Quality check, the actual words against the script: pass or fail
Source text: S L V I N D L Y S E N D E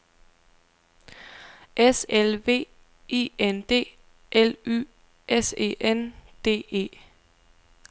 pass